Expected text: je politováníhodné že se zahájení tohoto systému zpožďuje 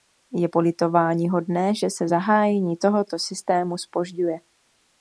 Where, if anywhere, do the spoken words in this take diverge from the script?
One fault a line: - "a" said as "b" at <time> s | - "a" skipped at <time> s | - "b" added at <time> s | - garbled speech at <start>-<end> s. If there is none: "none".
none